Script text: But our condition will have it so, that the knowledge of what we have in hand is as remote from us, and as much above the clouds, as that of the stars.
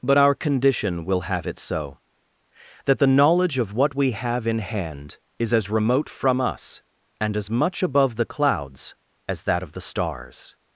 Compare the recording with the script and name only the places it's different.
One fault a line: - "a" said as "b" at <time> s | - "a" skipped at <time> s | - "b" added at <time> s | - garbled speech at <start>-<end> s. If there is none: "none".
none